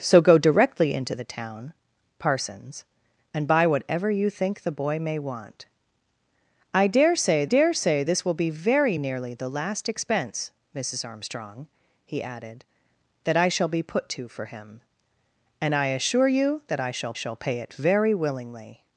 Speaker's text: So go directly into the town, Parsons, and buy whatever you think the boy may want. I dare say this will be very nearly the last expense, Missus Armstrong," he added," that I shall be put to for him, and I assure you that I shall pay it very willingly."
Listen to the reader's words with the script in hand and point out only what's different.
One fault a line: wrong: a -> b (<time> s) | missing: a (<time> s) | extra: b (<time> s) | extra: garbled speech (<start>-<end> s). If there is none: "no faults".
extra: dare say (7.4 s)
extra: shall (17.1 s)